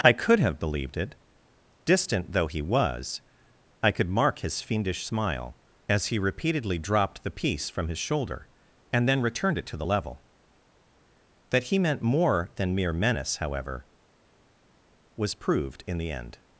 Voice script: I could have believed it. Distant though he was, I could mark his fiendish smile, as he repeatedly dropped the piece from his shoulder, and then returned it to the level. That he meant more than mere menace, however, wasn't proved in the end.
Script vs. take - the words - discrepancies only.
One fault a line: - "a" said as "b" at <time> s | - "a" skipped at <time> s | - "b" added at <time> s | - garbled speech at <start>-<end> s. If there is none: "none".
- "wasn't" said as "was" at 15.2 s